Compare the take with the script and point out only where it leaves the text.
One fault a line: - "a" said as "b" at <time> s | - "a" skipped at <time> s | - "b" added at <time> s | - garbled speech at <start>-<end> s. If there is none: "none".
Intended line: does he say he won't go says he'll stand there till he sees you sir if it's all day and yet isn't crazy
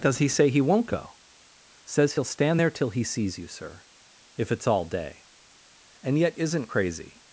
none